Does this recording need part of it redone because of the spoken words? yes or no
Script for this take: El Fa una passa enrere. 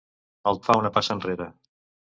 no